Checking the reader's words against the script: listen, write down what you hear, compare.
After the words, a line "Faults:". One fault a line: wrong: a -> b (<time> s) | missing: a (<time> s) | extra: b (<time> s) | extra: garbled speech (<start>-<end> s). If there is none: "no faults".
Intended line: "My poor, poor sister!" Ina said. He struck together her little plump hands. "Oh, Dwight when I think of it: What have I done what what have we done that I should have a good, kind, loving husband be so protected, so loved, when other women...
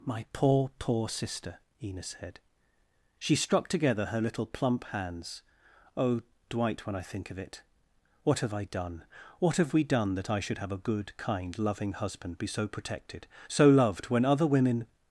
"My poor, poor sister!" Ina said. She struck together her little plump hands. "Oh, Dwight when I think of it: What have I done what have we done that I should have a good, kind, loving husband be so protected, so loved, when other women...
Faults:
wrong: He -> She (3.2 s)
missing: what (9.6 s)